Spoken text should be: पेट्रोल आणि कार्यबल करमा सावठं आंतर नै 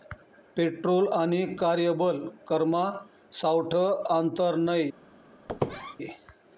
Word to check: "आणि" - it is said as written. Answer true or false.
true